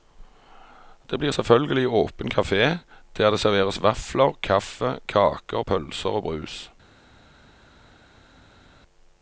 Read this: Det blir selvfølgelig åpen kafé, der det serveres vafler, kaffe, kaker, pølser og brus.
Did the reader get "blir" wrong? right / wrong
right